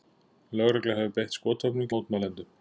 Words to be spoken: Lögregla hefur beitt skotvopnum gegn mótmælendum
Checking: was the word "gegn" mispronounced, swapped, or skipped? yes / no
yes